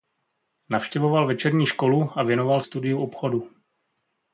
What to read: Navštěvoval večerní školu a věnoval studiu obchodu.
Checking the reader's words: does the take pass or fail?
pass